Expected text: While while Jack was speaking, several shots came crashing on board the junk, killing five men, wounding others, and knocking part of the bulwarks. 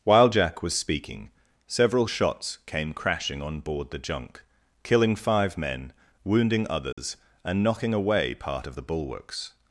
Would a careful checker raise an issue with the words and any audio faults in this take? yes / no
yes